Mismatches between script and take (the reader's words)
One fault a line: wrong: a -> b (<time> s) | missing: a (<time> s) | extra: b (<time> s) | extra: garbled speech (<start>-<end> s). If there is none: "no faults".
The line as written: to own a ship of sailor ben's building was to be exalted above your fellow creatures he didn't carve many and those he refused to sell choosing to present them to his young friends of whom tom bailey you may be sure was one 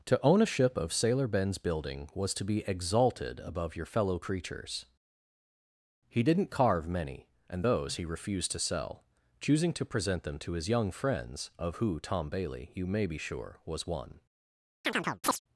wrong: whom -> who (11.8 s)